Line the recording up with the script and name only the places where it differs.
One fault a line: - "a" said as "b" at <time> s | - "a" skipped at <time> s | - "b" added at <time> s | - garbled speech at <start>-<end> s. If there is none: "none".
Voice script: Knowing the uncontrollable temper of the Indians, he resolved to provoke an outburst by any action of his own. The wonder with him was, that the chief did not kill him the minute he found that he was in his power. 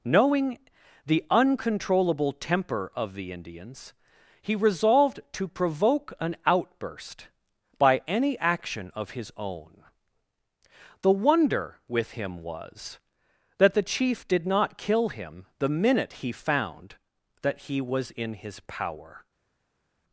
none